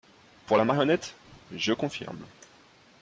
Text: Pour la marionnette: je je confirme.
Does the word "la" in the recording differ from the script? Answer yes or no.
no